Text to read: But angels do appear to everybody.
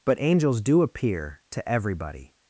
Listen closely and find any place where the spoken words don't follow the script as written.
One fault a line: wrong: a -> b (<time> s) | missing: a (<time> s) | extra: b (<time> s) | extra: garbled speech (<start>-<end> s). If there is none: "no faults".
no faults